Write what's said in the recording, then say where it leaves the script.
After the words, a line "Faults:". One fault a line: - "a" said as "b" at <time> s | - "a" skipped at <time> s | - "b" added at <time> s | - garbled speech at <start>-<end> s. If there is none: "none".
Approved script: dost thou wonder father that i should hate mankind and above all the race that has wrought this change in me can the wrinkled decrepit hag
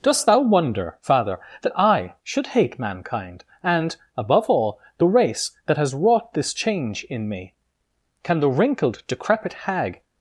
dost thou wonder father that i should hate mankind and above all the race that has wrought this change in me can the wrinkled decrepit hag
Faults:
none